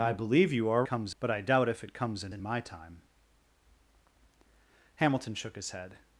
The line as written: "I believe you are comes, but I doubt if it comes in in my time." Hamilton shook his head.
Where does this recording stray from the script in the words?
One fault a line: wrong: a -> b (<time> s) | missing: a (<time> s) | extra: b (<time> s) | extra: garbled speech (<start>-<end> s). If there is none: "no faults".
no faults